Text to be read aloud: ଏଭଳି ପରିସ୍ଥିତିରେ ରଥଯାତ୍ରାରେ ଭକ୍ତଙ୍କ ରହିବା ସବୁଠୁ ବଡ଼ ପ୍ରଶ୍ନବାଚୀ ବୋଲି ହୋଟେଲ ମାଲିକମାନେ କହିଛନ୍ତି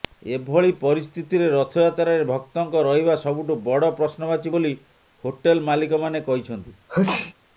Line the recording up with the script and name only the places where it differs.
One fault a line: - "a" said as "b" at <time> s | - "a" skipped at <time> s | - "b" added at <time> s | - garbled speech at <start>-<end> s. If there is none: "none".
none